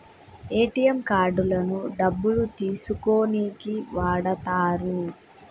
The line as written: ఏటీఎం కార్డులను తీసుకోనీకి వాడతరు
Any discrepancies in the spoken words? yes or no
yes